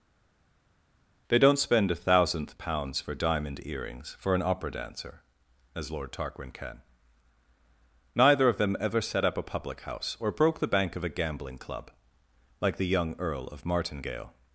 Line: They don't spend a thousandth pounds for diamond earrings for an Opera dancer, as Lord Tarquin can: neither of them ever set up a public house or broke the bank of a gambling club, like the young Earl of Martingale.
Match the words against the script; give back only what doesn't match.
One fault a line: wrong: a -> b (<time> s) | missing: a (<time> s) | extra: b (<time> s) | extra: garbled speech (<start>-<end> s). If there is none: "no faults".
no faults